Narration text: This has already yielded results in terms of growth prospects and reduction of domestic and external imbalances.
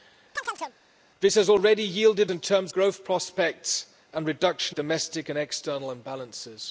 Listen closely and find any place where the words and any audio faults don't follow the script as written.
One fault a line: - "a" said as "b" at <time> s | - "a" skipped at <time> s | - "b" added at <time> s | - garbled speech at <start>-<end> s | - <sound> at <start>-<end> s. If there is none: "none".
- chirp at 0.4-0.8 s
- "results" skipped at 2.3 s
- "of" skipped at 2.7 s
- "of" skipped at 4.8 s